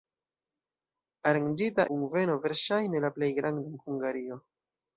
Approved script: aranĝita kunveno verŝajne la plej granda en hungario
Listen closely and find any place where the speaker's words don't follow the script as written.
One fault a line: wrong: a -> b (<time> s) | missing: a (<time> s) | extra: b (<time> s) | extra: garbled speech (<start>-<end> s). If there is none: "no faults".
no faults